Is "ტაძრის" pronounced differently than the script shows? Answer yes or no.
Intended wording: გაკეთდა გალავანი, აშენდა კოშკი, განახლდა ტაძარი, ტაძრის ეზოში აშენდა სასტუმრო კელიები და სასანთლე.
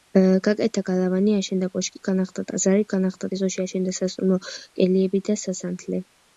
yes